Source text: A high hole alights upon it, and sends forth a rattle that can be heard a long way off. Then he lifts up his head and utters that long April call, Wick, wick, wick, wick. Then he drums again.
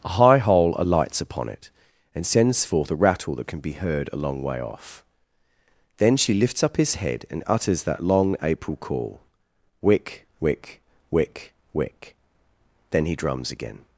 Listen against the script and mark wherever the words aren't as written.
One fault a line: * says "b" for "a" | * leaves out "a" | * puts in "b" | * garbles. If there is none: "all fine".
* says "she" for "he"